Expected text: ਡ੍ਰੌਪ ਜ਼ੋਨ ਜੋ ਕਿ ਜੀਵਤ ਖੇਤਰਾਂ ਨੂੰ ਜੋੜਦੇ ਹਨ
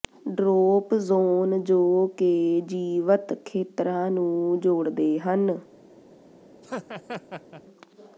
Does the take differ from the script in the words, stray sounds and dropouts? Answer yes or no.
yes